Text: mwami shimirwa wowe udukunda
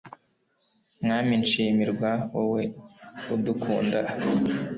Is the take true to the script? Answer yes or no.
yes